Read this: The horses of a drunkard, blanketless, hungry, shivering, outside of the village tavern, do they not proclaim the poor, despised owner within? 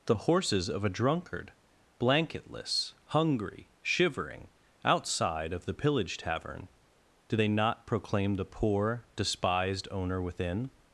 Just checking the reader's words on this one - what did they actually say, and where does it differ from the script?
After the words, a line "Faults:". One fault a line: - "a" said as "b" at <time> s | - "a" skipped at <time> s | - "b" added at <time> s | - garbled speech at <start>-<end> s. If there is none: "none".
The horses of a drunkard, blanketless, hungry, shivering, outside of the pillage tavern, do they not proclaim the poor, despised owner within?
Faults:
- "village" said as "pillage" at 5.7 s